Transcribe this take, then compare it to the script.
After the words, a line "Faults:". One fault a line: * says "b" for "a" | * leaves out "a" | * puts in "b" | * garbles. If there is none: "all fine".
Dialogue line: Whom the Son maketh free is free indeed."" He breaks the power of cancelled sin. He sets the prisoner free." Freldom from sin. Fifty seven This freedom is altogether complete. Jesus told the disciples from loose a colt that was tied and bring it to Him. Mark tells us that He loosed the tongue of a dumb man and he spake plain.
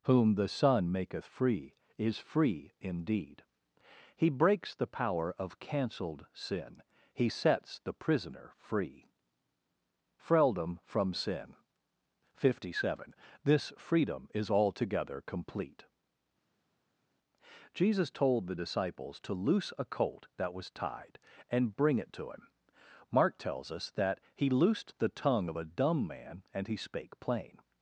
Whom the Son maketh free is free indeed."" He breaks the power of cancelled sin. He sets the prisoner free." Freldom from sin. Fifty seven This freedom is altogether complete. Jesus told the disciples to loose a colt that was tied and bring it to Him. Mark tells us that He loosed the tongue of a dumb man and he spake plain.
Faults:
* says "to" for "from"